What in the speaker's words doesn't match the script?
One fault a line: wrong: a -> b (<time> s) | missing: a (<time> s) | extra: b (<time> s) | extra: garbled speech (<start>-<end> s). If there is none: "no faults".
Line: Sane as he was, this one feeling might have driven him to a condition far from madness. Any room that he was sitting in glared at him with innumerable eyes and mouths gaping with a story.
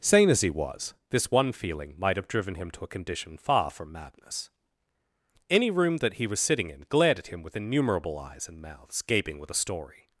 no faults